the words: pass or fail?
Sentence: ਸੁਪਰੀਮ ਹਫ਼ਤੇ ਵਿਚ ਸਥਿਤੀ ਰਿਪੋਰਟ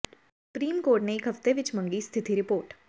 fail